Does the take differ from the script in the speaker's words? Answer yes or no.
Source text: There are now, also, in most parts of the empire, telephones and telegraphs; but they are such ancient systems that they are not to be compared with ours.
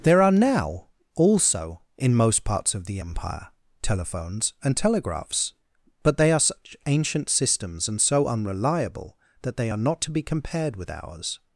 yes